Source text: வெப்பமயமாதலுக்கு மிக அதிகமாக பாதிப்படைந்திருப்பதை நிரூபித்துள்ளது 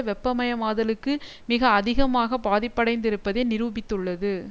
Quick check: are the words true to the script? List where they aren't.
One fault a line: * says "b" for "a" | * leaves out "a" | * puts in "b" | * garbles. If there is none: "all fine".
all fine